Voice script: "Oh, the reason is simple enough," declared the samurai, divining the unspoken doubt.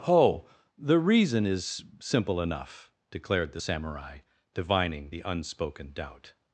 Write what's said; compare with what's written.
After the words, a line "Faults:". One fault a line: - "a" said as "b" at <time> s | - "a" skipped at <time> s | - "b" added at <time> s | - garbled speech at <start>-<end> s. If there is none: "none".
"Oh, the reason is simple enough," declared the samurai, divining the unspoken doubt.
Faults:
none